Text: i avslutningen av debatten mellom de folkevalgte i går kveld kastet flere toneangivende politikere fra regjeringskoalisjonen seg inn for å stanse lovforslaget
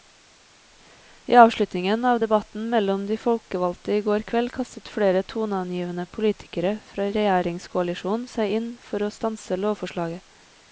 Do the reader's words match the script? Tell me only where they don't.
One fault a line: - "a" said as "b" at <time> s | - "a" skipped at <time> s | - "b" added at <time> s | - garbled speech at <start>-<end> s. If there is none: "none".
none